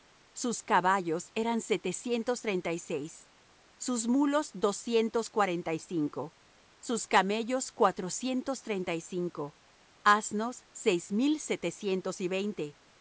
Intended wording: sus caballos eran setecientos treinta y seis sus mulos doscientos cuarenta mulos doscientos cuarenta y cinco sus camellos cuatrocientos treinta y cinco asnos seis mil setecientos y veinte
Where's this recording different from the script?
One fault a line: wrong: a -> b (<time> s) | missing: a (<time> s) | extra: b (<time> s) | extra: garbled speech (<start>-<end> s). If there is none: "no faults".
missing: mulos doscientos cuarenta (5.7 s)